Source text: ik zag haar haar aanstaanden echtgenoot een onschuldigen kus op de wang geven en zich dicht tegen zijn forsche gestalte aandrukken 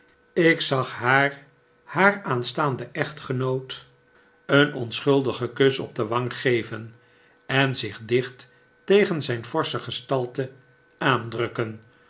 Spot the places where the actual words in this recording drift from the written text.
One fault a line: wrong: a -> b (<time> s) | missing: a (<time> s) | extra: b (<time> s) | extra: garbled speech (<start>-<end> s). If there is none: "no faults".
no faults